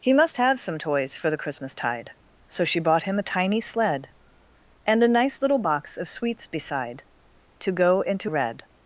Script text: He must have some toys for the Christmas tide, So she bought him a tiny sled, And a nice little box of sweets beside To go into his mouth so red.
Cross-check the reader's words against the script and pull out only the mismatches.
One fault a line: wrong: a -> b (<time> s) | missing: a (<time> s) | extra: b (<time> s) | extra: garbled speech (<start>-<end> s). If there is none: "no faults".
missing: his mouth so (8.3 s)